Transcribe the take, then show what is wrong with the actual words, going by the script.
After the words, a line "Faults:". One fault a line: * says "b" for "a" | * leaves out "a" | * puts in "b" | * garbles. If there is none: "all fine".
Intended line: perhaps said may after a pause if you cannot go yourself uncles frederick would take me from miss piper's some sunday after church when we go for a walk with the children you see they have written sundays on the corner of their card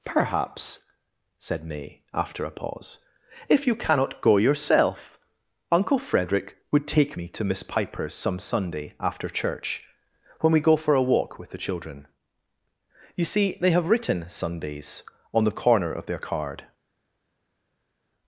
perhaps said may after a pause if you cannot go yourself uncle frederick would take me to miss piper's some sunday after church when we go for a walk with the children you see they have written sundays on the corner of their card
Faults:
* says "uncle" for "uncles"
* says "to" for "from"